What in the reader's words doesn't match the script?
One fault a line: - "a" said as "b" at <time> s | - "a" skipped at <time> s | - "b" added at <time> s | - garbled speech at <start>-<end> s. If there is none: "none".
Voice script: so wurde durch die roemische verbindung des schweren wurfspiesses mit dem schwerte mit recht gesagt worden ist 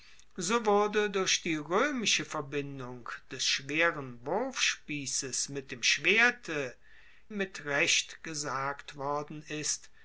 none